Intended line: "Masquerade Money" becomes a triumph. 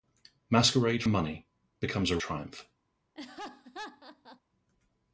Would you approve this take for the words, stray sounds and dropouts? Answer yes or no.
no